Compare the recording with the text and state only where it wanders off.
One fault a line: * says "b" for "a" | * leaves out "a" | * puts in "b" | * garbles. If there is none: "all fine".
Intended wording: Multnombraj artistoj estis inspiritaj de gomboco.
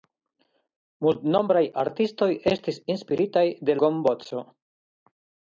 all fine